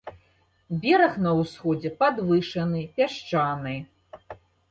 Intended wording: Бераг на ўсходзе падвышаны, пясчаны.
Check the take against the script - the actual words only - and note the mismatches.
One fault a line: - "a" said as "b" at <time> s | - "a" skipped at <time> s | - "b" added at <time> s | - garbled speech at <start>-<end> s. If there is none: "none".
none